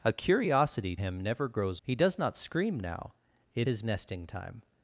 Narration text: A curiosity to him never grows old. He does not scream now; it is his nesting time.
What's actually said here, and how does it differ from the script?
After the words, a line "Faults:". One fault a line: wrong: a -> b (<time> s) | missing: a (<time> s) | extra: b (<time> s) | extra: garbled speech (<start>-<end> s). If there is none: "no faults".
A curiosity him never grows. He does not scream now; it his nesting time.
Faults:
missing: to (0.9 s)
missing: old (1.8 s)
missing: is (3.7 s)